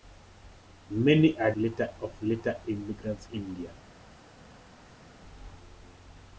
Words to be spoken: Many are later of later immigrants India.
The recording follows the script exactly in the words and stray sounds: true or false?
true